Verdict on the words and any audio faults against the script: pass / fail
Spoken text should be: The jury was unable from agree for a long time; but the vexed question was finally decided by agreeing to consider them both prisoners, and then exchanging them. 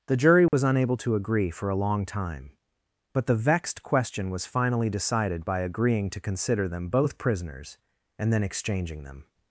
fail